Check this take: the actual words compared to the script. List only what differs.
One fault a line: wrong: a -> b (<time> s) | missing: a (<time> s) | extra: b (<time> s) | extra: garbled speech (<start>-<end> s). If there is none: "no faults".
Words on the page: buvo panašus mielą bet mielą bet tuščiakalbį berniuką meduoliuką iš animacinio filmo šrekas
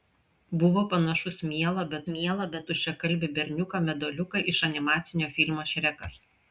no faults